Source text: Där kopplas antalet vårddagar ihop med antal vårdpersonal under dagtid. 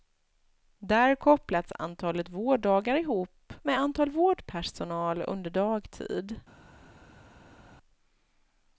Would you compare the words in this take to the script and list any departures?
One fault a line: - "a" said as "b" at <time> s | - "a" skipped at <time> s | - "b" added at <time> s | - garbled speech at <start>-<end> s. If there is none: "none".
none